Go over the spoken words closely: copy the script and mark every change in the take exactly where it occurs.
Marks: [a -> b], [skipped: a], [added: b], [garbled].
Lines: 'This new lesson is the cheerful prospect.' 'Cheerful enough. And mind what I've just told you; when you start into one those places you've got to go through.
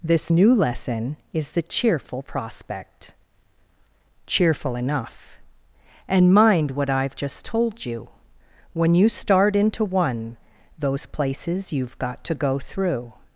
'This new lesson is the cheerful prospect.' 'Cheerful enough. And mind what I've just told you; when you start into one those places you've got to go through.